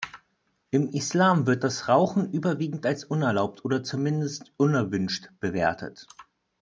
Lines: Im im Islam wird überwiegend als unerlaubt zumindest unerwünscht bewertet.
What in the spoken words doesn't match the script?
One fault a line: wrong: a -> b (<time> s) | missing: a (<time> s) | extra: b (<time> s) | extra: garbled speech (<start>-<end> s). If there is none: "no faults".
missing: im (0.9 s)
extra: das Rauchen (1.6 s)
extra: oder (3.6 s)